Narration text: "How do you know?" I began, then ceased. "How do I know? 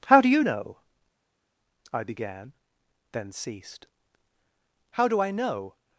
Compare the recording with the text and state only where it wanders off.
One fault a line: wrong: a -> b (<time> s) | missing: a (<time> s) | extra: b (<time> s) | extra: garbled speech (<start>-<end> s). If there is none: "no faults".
no faults